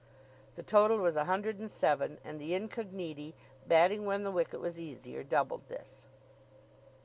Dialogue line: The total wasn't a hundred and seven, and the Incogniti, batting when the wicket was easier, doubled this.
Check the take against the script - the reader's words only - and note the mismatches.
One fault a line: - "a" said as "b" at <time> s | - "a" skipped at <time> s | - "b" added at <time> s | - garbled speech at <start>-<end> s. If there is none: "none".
- "wasn't" said as "was" at 1.0 s